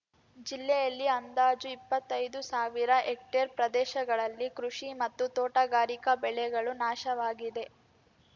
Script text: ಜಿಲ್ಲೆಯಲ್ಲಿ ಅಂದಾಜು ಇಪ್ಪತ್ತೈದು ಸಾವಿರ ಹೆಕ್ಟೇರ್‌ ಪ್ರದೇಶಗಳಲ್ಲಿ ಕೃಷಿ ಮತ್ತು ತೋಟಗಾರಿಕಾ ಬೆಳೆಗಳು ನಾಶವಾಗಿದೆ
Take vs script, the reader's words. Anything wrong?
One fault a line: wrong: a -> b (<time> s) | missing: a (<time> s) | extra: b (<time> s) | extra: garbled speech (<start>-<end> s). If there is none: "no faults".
no faults